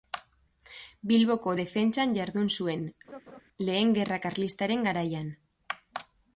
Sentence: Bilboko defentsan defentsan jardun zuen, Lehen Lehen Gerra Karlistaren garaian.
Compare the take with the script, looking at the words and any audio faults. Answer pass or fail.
fail